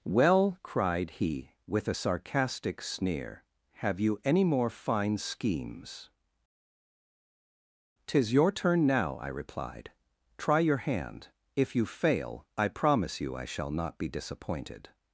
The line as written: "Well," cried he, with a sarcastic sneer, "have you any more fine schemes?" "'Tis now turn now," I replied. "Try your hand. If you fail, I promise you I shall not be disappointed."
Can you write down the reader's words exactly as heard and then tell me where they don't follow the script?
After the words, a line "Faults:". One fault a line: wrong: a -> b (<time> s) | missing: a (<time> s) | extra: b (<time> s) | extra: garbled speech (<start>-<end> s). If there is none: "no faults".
"Well," cried he, with a sarcastic sneer, "have you any more fine schemes?" "'Tis your turn now," I replied. "Try your hand. If you fail, I promise you I shall not be disappointed."
Faults:
wrong: now -> your (8.3 s)